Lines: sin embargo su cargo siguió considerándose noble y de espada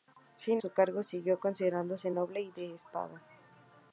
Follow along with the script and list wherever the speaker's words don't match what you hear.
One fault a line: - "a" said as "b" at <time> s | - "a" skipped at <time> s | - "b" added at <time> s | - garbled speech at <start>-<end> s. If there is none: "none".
- "embargo" skipped at 0.6 s